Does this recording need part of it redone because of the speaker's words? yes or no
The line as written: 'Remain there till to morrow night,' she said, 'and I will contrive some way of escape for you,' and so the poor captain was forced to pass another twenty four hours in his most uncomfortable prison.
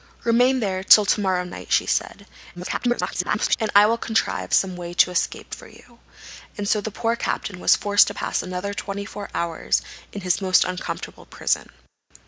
yes